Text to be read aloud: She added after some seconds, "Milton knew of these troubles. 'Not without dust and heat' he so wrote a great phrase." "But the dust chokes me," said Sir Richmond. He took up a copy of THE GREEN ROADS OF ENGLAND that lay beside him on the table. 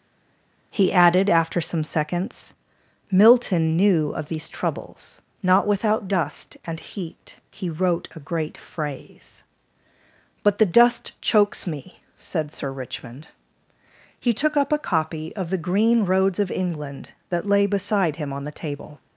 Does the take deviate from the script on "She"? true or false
true